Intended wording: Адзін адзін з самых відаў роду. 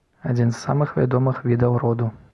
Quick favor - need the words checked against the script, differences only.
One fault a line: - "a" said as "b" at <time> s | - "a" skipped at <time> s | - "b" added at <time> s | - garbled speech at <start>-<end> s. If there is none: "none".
- "адзін" skipped at 0.5 s
- "вядомых" added at 1.0 s